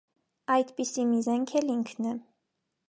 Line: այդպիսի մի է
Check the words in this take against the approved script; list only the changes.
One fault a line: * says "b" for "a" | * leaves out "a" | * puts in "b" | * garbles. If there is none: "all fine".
* puts in "զենք էլ ինքն"